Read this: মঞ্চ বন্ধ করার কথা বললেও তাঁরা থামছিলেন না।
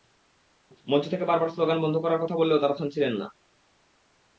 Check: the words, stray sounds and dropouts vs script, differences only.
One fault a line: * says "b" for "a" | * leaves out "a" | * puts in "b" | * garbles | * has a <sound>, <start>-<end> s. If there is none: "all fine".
* puts in "থেকে বারবার স্লোগান"